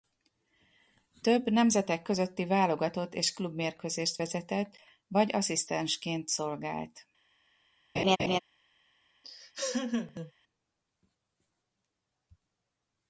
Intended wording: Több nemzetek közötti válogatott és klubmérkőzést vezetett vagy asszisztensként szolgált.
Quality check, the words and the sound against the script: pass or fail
fail